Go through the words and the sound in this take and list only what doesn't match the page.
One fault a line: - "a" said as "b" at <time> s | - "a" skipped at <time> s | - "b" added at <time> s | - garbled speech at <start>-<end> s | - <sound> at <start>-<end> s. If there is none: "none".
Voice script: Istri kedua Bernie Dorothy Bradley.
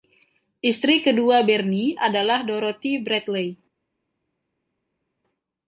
- "adalah" added at 2.0 s